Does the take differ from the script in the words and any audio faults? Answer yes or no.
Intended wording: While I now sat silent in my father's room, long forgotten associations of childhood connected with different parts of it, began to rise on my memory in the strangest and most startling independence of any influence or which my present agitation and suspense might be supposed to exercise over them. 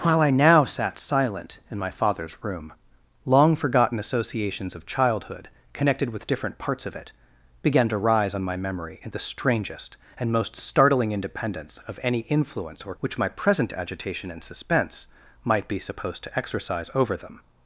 no